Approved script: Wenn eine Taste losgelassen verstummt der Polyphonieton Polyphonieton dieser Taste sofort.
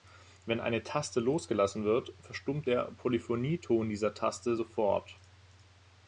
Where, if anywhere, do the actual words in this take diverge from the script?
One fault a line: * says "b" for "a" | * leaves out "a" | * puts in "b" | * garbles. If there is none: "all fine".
* puts in "wird"
* leaves out "Polyphonieton"